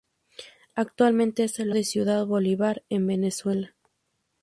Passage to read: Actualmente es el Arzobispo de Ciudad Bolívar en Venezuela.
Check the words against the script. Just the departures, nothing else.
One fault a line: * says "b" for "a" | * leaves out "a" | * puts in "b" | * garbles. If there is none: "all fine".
* leaves out "Arzobispo"